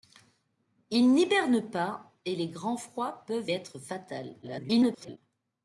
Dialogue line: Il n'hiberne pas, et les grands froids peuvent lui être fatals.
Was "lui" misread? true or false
true